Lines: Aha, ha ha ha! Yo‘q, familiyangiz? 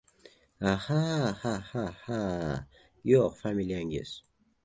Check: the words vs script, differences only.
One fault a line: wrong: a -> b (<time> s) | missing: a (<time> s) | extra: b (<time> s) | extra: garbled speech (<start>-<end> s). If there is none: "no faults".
no faults